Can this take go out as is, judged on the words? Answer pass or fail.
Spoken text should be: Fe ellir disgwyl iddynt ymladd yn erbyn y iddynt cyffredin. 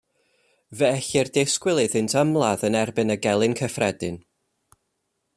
fail